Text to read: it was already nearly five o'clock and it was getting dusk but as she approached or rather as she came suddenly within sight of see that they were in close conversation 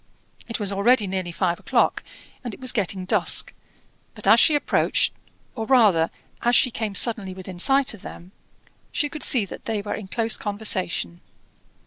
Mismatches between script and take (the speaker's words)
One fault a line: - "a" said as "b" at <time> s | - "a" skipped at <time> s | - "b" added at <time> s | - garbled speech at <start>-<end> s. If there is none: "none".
- "them she could" added at 8.0 s